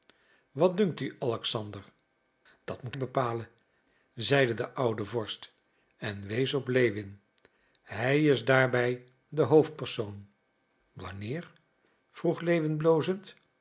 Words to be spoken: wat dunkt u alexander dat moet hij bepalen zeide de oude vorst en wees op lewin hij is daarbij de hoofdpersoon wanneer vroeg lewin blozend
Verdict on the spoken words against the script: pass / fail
fail